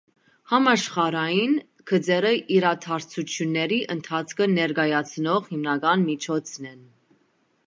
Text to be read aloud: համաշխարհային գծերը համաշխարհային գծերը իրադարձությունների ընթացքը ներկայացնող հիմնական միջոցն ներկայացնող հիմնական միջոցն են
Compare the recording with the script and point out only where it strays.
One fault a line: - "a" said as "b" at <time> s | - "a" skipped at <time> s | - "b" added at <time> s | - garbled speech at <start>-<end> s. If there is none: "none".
- "համաշխարհային գծերը" skipped at 2.3 s
- "ներկայացնող հիմնական միջոցն" skipped at 6.7 s